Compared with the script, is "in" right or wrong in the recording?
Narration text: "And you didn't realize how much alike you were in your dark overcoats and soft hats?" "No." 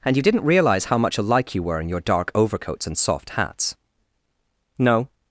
right